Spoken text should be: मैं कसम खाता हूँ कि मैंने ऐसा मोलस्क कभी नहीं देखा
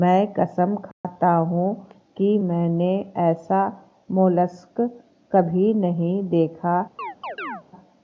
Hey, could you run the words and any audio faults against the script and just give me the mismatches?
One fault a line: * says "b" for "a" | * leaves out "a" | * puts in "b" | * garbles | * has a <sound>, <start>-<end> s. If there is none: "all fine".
* has a dropout, 0.9-1.0 s
* has a chirp, 7.0-7.6 s